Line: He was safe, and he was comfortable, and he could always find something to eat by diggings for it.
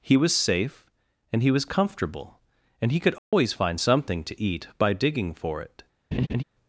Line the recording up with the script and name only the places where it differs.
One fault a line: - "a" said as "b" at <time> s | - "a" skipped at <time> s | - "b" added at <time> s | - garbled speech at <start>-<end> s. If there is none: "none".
- "diggings" said as "digging" at 4.9 s